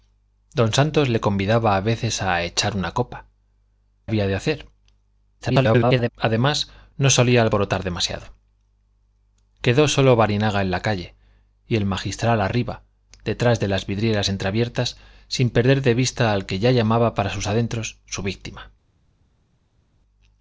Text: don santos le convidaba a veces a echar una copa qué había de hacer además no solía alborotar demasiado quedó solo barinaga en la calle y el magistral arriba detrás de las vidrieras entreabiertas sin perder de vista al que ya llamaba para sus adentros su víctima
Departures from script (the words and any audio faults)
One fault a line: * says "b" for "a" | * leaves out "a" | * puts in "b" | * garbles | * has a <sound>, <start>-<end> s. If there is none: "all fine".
* leaves out "qué"
* garbles